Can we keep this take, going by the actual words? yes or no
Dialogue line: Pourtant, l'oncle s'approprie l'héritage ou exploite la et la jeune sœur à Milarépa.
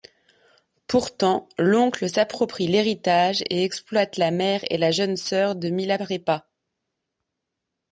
no